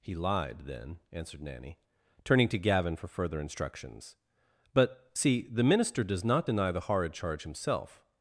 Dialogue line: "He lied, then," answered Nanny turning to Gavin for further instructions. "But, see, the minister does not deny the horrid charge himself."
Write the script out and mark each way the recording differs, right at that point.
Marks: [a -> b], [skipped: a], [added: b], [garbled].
"He lied, then," answered Nanny turning to Gavin for further instructions. "But, see, the minister does not deny the horrid charge himself."